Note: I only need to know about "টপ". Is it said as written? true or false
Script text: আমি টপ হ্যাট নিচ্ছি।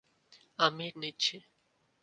false